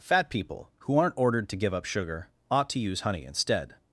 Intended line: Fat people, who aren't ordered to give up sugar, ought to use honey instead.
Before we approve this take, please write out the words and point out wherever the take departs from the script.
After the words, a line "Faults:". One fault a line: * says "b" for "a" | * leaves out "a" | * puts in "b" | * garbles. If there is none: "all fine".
Fat people, who aren't ordered to give up sugar, ought to use honey instead.
Faults:
all fine